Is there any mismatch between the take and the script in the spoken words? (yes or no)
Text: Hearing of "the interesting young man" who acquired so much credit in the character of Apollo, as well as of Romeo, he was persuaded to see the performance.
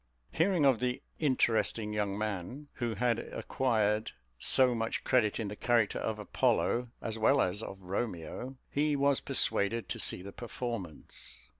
yes